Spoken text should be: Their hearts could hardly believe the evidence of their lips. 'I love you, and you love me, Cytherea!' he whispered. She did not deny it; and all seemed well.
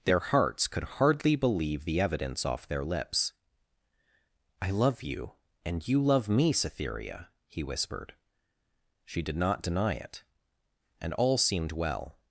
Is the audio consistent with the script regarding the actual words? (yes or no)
no